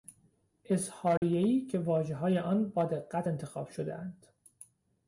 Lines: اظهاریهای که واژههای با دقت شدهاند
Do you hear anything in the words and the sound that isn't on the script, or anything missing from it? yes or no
yes